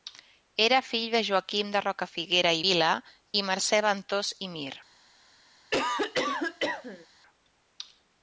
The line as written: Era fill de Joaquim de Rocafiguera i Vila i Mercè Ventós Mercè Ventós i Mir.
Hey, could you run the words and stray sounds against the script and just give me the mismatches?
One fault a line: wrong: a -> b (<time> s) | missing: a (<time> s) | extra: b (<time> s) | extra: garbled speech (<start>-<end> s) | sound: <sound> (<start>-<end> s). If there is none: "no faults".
missing: Mercè Ventós (4.3 s)
sound: cough (5.7-7.1 s)